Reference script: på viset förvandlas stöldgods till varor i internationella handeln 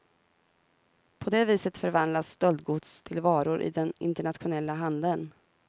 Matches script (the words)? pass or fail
fail